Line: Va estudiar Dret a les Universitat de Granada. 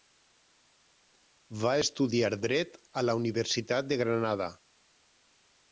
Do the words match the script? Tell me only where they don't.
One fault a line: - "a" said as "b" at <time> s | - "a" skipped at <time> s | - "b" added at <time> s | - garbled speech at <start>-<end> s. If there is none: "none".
- "les" said as "la" at 3.0 s